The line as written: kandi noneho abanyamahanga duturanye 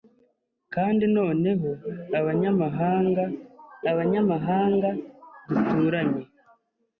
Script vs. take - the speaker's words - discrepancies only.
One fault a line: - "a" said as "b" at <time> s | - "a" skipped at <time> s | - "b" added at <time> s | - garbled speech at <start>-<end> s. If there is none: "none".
- "abanyamahanga" added at 3.9 s